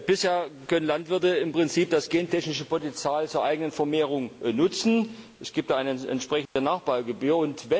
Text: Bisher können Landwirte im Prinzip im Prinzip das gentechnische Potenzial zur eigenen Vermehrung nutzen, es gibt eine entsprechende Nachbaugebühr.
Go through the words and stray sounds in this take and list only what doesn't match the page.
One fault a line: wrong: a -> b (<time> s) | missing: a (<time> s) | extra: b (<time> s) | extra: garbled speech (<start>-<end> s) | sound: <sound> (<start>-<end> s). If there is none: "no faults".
missing: im Prinzip (1.9 s)
sound: dropout (6.5-6.6 s)